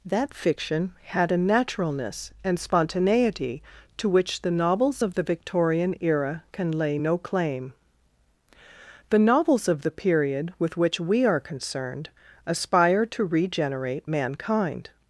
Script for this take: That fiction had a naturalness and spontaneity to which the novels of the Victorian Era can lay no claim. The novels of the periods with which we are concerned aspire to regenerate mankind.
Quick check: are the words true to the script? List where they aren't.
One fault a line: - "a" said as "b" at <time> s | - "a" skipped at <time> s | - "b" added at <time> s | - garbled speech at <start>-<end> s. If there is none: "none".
- "periods" said as "period" at 9.9 s